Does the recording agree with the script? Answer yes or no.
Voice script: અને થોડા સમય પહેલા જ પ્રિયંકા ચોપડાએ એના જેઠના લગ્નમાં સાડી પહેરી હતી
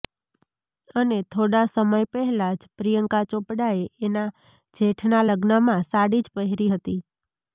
no